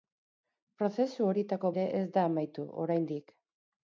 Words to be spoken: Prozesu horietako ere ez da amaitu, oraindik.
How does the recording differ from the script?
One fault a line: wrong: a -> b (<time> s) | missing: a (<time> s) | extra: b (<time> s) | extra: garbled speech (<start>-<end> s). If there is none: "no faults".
no faults